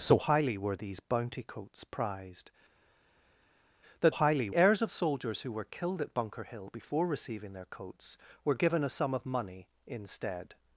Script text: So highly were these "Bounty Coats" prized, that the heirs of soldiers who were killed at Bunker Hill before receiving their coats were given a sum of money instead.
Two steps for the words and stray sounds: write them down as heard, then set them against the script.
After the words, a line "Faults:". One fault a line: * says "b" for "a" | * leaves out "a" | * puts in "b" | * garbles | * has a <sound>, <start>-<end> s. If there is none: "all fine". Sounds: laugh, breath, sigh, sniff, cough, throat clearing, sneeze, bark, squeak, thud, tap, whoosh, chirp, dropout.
So highly were these "Bounty Coats" prized, that highly heirs of soldiers who were killed at Bunker Hill before receiving their coats were given a sum of money instead.
Faults:
* says "highly" for "the"